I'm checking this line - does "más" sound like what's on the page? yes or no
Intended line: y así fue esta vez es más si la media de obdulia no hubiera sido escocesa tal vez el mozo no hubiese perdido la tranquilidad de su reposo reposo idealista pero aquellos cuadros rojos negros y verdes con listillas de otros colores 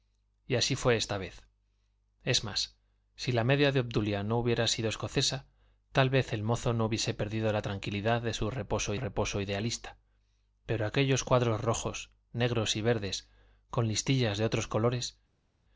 yes